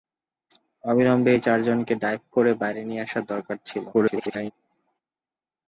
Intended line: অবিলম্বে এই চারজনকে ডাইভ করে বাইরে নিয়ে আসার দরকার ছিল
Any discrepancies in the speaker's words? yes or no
yes